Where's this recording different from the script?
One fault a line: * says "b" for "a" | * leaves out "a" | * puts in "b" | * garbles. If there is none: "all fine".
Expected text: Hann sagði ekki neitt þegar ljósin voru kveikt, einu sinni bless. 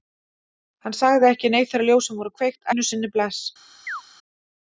all fine